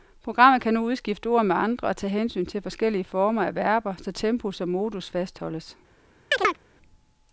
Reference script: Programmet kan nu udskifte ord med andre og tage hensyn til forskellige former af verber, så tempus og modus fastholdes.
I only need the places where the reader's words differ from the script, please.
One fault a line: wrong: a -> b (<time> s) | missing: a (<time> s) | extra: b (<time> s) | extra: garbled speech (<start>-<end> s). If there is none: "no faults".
no faults